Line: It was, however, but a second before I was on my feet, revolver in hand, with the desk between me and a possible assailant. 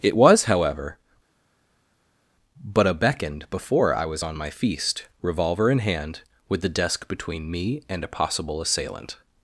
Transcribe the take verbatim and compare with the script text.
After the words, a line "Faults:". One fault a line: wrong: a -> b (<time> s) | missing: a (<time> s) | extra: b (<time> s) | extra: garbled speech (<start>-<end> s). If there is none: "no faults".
It was, however, but a beckoned before I was on my feast, revolver in hand, with the desk between me and a possible assailant.
Faults:
wrong: second -> beckoned (2.9 s)
wrong: feet -> feast (4.5 s)